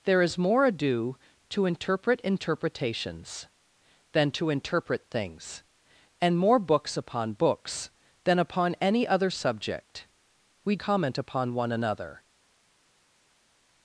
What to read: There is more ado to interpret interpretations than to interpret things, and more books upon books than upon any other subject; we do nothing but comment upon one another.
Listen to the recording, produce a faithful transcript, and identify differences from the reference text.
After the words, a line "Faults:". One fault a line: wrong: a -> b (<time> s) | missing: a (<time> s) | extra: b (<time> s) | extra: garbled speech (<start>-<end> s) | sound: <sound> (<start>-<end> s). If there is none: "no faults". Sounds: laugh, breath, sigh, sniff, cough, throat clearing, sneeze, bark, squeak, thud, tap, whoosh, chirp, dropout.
There is more ado to interpret interpretations than to interpret things, and more books upon books than upon any other subject; we comment upon one another.
Faults:
missing: do nothing but (10.8 s)